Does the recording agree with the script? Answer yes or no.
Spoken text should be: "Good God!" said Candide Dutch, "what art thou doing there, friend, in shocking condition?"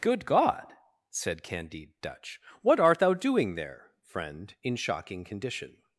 yes